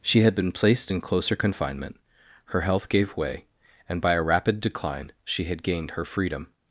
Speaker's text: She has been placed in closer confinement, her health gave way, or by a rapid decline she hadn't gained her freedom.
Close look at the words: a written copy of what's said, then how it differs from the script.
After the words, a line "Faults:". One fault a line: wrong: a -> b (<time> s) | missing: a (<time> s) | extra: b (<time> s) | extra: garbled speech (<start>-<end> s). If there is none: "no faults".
She had been placed in closer confinement, her health gave way, and by a rapid decline she had gained her freedom.
Faults:
wrong: has -> had (0.2 s)
wrong: or -> and (3.9 s)
wrong: hadn't -> had (5.4 s)